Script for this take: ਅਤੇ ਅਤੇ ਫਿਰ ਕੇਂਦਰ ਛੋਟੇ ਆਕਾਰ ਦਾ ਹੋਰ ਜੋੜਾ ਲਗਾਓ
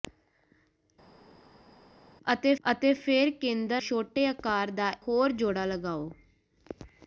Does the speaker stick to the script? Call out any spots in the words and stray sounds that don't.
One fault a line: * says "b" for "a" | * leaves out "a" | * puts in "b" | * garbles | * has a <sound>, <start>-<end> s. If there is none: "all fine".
all fine